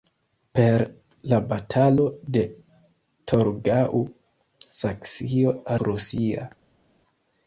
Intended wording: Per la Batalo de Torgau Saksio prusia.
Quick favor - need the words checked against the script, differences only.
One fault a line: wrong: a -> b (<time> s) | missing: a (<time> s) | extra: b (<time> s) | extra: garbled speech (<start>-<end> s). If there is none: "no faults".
no faults